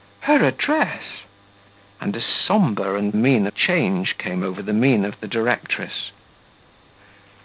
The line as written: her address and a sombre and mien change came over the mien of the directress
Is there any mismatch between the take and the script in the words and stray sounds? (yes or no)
no